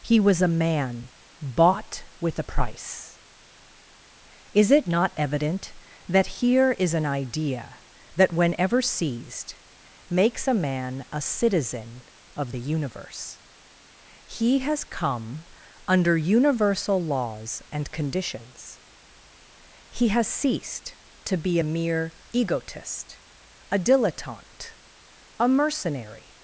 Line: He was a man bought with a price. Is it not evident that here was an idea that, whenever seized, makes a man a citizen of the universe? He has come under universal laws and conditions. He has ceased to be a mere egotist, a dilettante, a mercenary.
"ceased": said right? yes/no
yes